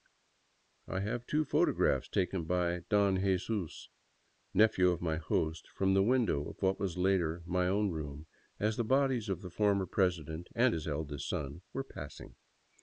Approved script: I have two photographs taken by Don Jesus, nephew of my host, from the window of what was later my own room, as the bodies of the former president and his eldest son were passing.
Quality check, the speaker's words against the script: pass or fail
pass